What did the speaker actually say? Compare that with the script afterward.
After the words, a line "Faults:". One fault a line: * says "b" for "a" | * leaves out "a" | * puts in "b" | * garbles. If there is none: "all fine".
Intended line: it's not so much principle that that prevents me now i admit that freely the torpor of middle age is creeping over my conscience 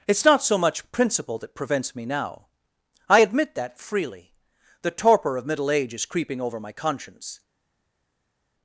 it's not so much principle that prevents me now i admit that freely the torpor of middle age is creeping over my conscience
Faults:
* leaves out "that"